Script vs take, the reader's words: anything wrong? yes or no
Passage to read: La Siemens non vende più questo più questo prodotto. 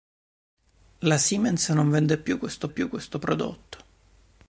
no